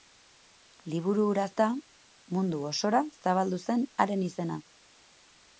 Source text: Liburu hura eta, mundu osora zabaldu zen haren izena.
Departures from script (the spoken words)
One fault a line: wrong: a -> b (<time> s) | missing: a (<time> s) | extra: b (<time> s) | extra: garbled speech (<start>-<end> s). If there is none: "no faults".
no faults